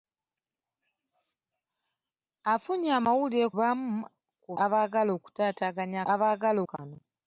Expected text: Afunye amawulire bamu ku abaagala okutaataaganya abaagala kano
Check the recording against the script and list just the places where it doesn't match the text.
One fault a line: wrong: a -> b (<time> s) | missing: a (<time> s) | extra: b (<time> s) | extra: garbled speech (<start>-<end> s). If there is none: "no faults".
no faults